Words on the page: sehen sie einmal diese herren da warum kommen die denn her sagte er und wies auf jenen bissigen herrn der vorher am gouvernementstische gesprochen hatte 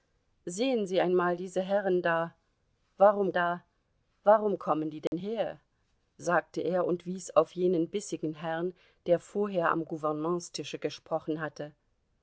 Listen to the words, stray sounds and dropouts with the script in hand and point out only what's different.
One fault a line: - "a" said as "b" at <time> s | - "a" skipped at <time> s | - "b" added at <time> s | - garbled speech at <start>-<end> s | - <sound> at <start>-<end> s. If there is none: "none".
- "da warum" added at 3.3 s
- dropout at 5.1-5.1 s